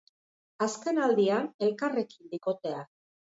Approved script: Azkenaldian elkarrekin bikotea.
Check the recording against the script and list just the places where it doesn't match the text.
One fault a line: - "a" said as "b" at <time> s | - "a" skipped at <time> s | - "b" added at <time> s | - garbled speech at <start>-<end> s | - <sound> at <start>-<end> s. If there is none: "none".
none